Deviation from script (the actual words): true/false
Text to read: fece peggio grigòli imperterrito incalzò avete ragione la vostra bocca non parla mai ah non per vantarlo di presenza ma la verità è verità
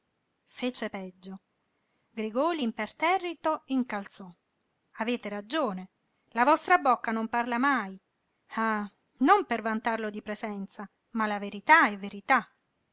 false